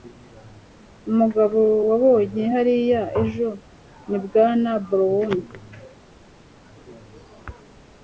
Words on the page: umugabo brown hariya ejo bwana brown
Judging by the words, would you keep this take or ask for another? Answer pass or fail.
fail